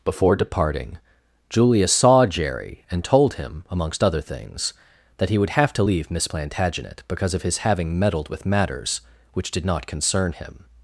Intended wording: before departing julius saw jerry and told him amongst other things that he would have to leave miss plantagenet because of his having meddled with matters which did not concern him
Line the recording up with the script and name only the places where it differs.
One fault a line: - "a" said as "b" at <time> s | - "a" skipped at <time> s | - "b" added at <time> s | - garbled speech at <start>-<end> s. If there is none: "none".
none